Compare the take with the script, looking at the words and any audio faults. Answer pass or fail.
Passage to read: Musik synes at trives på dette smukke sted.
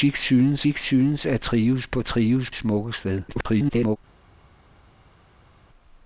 fail